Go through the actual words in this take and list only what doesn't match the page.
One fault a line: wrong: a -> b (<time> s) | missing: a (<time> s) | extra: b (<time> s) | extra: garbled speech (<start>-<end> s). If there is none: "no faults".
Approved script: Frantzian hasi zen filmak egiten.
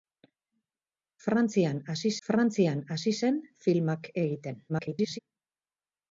extra: frantzian hasi (2.3 s)
extra: garbled speech (4.7-5.2 s)